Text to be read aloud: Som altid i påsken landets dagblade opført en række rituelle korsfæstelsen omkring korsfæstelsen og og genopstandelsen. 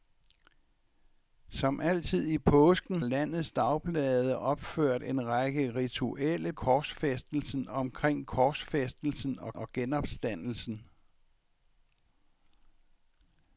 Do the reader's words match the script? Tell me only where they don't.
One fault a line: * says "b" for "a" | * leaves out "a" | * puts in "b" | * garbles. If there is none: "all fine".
all fine